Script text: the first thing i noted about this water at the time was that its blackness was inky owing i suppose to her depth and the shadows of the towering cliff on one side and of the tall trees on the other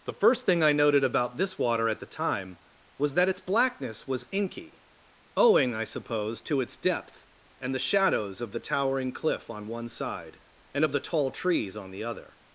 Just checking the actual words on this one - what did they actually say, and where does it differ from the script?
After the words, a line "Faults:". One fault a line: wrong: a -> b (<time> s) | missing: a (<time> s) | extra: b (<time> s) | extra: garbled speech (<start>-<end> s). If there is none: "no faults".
the first thing i noted about this water at the time was that its blackness was inky owing i suppose to its depth and the shadows of the towering cliff on one side and of the tall trees on the other
Faults:
wrong: her -> its (6.6 s)